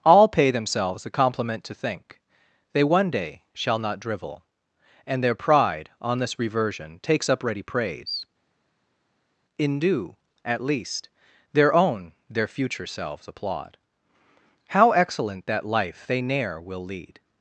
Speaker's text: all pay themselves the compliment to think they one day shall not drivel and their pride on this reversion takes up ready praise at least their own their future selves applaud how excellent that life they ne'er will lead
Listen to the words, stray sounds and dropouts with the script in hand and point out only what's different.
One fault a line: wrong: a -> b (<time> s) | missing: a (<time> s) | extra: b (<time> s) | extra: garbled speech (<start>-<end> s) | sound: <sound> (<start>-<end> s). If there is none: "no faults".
extra: in due (9.6 s)